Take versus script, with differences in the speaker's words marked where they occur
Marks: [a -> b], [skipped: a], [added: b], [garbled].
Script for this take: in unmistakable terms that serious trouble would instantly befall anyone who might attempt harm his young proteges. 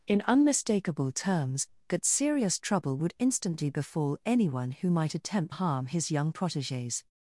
in unmistakable terms that serious trouble would instantly befall anyone who might attempt harm his young proteges.